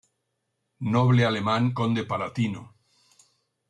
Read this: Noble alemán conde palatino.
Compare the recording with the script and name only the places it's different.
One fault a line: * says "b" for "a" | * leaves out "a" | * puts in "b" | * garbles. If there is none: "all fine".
all fine